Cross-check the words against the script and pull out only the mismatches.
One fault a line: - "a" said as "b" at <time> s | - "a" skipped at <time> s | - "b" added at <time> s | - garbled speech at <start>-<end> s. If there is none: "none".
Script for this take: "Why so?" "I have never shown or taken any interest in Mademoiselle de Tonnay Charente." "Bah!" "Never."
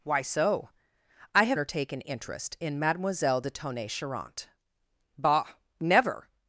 - "never shown" skipped at 1.6 s
- "any" skipped at 2.0 s